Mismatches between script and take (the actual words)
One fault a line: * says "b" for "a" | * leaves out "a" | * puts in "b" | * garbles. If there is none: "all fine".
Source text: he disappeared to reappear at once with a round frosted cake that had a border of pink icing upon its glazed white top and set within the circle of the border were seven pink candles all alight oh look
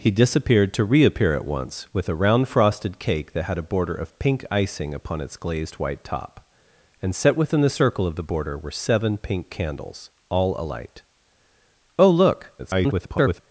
* garbles